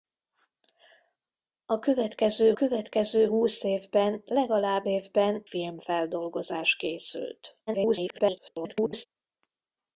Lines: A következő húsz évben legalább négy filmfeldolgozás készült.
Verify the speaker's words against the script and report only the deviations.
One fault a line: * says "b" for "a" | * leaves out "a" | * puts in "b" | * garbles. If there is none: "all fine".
* puts in "következő"
* says "évben" for "négy"
* garbles